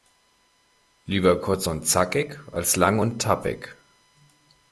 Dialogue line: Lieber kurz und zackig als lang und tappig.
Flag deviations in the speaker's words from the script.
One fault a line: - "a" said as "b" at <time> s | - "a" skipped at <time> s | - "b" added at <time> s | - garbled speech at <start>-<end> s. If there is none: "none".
none